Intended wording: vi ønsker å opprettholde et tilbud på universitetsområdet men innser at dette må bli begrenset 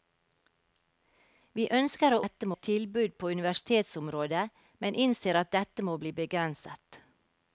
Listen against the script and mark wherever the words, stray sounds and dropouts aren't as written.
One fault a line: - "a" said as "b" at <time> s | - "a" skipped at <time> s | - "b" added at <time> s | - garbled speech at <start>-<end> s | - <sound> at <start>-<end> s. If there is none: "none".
- "opprettholde" said as "dette" at 2.2 s